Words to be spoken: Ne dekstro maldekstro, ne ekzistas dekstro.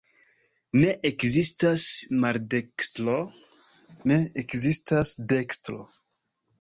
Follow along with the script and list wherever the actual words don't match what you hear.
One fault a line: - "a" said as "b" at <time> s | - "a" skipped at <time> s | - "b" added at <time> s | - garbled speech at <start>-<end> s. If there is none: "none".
- "dekstro" said as "ekzistas" at 1.1 s